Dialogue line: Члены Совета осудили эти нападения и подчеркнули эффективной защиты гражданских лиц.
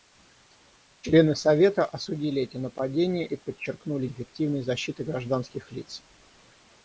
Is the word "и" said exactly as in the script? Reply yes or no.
yes